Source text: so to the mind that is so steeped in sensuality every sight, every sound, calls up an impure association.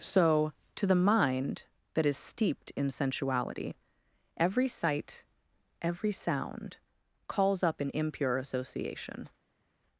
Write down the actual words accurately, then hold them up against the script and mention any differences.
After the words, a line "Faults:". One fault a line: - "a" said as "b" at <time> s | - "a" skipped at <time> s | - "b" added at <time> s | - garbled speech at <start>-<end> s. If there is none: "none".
so to the mind that is steeped in sensuality every sight, every sound, calls up an impure association.
Faults:
- "so" skipped at 2.2 s